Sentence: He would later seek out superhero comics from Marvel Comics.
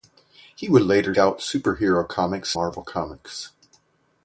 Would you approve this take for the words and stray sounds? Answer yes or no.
no